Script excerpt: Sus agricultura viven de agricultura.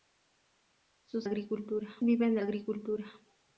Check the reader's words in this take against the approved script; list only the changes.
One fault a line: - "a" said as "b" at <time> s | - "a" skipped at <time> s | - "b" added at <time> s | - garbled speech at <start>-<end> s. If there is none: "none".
none